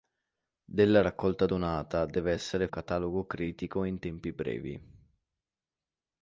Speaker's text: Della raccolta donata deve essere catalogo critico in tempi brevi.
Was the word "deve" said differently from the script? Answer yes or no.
no